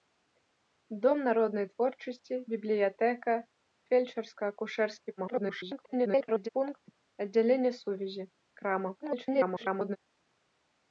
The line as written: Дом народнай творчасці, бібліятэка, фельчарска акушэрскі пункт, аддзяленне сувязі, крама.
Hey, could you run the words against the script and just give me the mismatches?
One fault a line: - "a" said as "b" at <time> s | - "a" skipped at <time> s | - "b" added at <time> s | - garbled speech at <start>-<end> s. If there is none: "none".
- garbled speech at 5.2-6.5 s
- garbled speech at 9.0-10.0 s